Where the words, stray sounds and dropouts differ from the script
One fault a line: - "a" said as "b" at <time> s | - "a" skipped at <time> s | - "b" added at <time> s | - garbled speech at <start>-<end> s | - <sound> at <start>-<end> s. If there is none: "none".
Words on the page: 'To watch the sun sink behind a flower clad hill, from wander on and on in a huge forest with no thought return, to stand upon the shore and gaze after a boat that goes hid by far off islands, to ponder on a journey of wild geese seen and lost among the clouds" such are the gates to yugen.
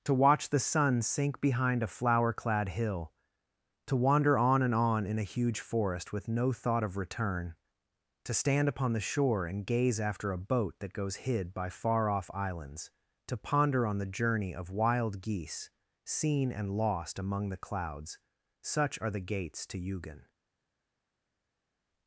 - "from" said as "to" at 3.9 s
- "of" added at 6.8 s
- "a" said as "the" at 14.0 s